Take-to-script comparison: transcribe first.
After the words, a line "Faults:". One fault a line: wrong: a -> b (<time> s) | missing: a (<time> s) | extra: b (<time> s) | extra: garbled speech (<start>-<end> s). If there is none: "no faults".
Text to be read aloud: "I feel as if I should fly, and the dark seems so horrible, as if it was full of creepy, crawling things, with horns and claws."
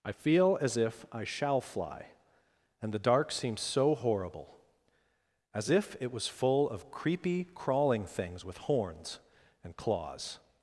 "I feel as if I shall fly, and the dark seems so horrible, as if it was full of creepy, crawling things, with horns and claws."
Faults:
wrong: should -> shall (1.2 s)